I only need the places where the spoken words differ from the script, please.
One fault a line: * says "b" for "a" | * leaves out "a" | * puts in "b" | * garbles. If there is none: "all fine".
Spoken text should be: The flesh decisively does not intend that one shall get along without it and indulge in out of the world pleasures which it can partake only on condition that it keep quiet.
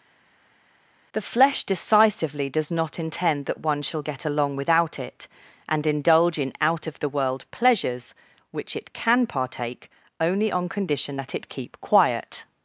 all fine